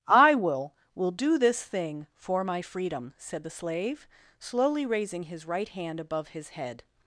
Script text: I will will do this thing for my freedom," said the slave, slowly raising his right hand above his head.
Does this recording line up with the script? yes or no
yes